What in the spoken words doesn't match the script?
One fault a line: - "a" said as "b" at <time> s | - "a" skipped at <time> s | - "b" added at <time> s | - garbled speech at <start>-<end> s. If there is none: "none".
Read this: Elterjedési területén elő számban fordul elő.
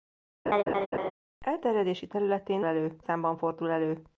none